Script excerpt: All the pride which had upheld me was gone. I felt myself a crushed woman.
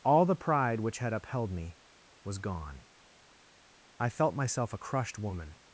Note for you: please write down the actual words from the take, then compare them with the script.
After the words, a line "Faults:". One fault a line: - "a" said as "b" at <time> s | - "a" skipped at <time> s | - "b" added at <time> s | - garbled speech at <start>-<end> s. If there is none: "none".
All the pride which had upheld me was gone. I felt myself a crushed woman.
Faults:
none